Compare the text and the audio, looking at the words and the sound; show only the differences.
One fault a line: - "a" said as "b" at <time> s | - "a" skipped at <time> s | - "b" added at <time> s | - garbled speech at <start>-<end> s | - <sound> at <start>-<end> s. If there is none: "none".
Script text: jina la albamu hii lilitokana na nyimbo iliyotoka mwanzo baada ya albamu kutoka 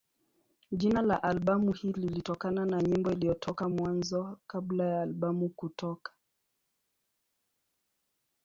- "baada" said as "kabla" at 4.5 s